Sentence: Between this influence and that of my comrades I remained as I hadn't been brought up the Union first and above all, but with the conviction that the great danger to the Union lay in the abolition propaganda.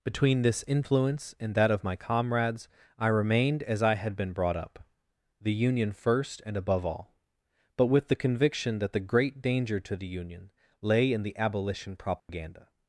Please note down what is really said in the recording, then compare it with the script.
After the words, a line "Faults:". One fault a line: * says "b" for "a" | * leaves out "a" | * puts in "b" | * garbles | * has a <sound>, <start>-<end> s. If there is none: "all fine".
Between this influence and that of my comrades I remained as I had been brought up the Union first and above all, but with the conviction that the great danger to the Union lay in the abolition propaganda.
Faults:
* says "had" for "hadn't"
* has a dropout, 12.2-12.3 s